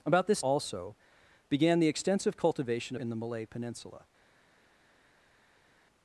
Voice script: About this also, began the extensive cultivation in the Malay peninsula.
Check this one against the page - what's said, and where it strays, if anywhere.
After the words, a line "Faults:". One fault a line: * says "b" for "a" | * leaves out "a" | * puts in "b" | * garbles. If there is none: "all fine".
About this also, began the extensive cultivation in the Malay peninsula.
Faults:
all fine